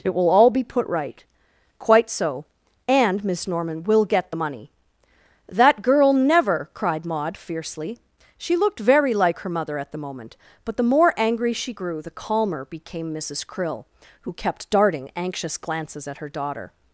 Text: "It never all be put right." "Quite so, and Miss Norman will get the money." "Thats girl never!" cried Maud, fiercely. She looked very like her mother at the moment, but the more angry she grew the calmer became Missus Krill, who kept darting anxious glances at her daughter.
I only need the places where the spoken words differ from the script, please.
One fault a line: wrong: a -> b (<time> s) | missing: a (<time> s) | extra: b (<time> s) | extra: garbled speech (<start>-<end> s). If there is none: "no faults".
wrong: never -> will (0.1 s)
wrong: Thats -> That (5.5 s)